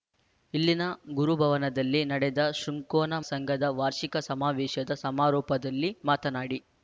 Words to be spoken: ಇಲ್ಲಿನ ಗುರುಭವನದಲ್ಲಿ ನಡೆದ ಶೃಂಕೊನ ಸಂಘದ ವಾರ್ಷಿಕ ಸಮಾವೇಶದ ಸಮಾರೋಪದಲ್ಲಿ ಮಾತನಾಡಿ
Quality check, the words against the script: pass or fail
pass